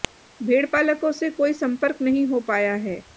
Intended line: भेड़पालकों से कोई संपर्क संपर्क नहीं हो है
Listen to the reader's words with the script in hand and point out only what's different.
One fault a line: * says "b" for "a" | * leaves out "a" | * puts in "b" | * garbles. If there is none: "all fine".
* leaves out "संपर्क"
* puts in "पाया"